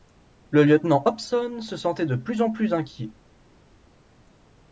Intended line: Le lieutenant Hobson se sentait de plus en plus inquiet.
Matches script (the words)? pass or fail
pass